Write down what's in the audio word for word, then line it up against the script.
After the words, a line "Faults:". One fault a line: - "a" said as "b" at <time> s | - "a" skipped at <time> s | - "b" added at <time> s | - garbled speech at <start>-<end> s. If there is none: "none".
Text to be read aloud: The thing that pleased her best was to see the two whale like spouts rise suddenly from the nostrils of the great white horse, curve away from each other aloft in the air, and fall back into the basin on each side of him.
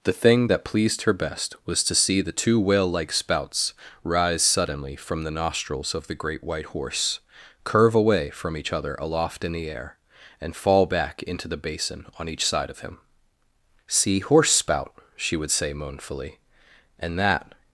The thing that pleased her best was to see the two whale like spouts rise suddenly from the nostrils of the great white horse, curve away from each other aloft in the air, and fall back into the basin on each side of him. 'See horse spout,' she would say moanfully; and that
Faults:
- "See horse spout she would say moanfully and that" added at 13.9 s